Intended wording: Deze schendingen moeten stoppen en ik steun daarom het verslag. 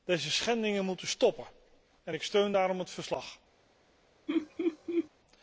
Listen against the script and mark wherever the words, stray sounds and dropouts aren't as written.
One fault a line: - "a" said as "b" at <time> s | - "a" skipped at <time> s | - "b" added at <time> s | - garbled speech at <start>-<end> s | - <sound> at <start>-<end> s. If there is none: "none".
- laugh at 4.3-5.1 s